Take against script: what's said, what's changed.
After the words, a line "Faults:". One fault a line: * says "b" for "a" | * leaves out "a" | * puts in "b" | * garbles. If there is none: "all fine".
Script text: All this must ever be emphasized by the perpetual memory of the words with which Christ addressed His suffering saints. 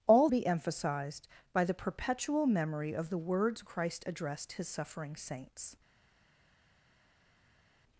All be emphasized by the perpetual memory of the words Christ addressed His suffering saints.
Faults:
* leaves out "this must ever"
* leaves out "with which"